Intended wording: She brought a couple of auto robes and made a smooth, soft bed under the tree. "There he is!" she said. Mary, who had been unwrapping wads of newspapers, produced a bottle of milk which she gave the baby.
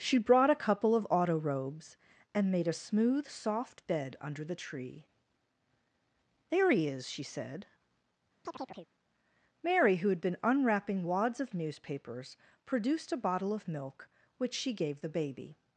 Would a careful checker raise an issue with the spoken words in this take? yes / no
no